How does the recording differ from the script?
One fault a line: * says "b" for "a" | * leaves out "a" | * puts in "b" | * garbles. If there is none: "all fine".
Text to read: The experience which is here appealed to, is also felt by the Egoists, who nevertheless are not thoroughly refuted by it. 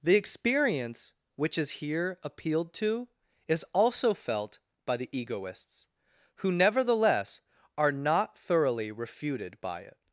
all fine